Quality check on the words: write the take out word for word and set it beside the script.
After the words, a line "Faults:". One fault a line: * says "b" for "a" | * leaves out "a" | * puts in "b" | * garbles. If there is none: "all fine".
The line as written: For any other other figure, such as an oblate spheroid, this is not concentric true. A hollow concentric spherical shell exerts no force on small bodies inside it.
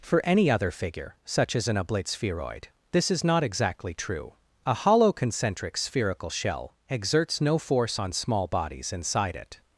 For any other figure, such as an oblate spheroid, this is not exactly true. A hollow concentric spherical shell exerts no force on small bodies inside it.
Faults:
* leaves out "other"
* says "exactly" for "concentric"